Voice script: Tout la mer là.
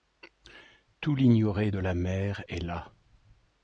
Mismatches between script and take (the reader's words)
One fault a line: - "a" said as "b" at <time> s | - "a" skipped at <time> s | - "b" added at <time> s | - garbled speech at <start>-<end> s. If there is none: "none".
- "l'ignoré de" added at 1.1 s
- "est" added at 2.5 s